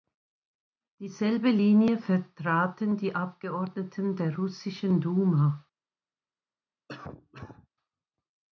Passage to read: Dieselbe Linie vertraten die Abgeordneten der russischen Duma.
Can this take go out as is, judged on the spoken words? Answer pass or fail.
pass